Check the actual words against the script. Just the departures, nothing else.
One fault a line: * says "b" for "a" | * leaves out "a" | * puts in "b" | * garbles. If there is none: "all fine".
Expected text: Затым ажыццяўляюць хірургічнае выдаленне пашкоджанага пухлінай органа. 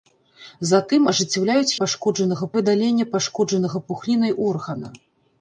* says "пашкоджанага" for "хірургічнае"